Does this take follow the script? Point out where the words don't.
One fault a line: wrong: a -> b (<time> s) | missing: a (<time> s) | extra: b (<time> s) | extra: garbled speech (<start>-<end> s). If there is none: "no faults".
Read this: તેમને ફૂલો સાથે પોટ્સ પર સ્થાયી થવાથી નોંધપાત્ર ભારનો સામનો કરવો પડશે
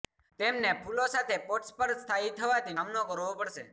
missing: નોંધપાત્ર ભારનો (2.8 s)